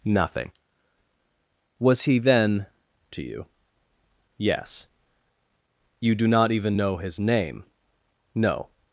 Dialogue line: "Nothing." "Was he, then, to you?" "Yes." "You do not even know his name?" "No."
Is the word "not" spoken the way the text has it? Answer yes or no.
yes